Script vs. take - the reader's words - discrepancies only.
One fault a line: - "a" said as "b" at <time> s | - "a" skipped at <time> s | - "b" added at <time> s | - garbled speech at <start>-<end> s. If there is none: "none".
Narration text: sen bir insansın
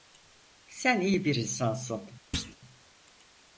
- "iyi" added at 1.0 s